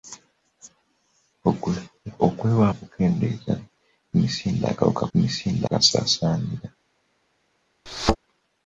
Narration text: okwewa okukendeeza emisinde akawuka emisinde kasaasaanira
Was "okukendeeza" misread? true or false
false